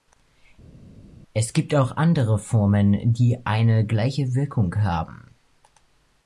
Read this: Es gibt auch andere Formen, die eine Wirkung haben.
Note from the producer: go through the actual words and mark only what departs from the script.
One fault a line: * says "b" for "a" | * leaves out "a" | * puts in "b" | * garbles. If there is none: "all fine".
* puts in "gleiche"